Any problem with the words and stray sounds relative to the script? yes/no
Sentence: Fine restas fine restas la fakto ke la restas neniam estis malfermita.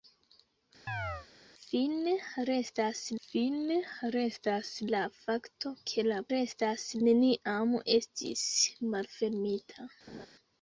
yes